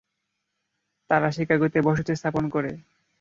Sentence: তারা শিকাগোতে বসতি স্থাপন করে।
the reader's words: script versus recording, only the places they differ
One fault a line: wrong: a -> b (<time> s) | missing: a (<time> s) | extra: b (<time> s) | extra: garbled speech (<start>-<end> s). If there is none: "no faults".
no faults